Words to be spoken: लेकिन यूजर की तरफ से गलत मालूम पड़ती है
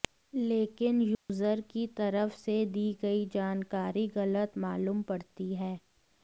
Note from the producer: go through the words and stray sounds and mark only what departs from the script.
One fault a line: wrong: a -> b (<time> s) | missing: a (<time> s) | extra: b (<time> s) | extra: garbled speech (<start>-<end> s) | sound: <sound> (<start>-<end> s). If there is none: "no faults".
sound: dropout (1.1-1.3 s)
extra: दी गई जानकारी (2.7 s)